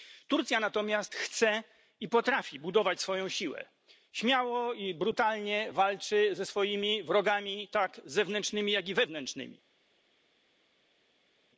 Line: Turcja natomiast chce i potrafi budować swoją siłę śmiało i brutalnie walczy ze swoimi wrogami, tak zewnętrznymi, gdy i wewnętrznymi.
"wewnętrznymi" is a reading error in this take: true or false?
false